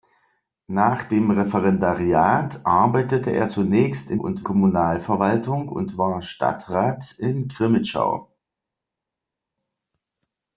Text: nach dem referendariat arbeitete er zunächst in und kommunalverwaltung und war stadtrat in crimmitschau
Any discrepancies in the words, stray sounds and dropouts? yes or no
no